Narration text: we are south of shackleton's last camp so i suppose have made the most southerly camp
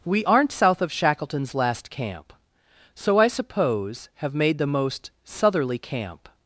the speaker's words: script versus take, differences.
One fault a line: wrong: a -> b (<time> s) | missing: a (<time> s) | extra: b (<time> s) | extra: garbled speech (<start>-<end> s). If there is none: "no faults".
wrong: are -> aren't (0.2 s)